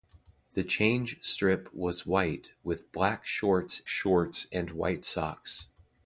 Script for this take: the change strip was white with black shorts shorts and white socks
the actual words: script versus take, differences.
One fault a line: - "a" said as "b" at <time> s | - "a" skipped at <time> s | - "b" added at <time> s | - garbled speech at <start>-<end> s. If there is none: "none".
none